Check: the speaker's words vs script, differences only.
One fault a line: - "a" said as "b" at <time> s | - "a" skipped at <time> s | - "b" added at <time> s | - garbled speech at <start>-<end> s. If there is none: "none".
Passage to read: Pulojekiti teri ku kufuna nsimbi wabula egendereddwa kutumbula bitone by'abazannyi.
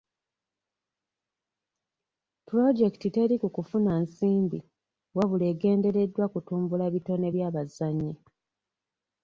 none